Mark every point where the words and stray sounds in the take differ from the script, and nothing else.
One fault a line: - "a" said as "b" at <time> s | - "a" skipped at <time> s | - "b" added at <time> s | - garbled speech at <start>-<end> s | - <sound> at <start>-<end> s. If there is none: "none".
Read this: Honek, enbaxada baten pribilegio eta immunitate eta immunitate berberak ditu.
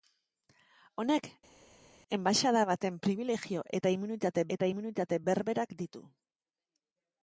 none